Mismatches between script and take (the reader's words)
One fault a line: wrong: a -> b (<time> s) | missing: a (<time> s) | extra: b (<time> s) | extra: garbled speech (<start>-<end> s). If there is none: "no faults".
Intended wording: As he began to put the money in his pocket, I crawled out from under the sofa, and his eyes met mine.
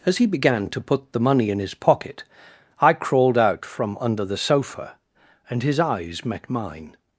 no faults